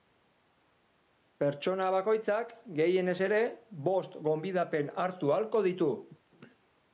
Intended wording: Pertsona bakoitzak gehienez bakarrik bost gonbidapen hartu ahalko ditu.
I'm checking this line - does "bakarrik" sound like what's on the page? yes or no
no